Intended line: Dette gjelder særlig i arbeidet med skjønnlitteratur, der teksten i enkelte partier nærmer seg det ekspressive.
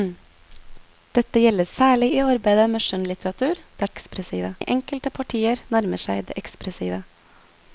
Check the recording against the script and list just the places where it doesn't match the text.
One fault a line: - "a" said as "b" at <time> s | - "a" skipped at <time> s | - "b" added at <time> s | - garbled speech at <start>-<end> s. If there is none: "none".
- "teksten" said as "ekspressive" at 3.9 s